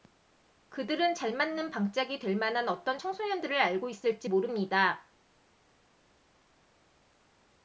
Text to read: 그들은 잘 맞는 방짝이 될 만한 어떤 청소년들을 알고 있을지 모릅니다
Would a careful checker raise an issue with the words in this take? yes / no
no